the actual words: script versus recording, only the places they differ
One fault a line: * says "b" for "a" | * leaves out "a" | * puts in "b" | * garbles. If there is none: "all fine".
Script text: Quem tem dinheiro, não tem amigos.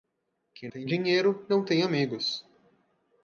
all fine